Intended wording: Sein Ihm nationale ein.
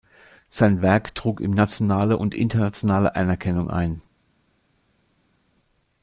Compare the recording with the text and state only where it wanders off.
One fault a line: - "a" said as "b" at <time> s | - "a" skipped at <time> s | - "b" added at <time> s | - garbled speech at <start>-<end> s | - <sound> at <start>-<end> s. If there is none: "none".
- "Werk trug" added at 0.8 s
- "und internationale Anerkennung" added at 2.1 s